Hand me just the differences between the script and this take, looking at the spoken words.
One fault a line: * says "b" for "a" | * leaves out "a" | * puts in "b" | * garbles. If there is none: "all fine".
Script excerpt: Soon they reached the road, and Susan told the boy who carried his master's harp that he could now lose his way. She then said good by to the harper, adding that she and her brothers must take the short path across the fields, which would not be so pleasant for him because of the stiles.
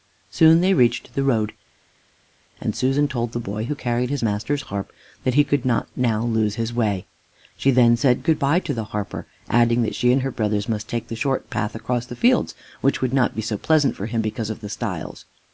* puts in "not"